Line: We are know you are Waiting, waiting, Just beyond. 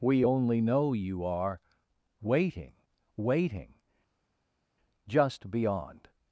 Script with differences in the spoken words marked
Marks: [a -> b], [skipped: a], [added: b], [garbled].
We [are -> only] know you are Waiting, waiting, Just beyond.